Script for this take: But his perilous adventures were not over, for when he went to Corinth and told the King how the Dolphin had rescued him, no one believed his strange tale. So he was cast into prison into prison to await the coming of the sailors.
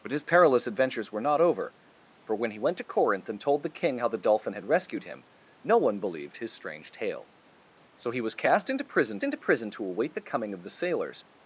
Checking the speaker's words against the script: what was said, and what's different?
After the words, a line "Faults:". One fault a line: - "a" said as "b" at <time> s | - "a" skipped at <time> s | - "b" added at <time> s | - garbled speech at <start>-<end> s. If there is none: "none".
But his perilous adventures were not over, for when he went to Corinth and told the King how the Dolphin had rescued him, no one believed his strange tale. So he was cast into prison into prison to await the coming of the sailors.
Faults:
none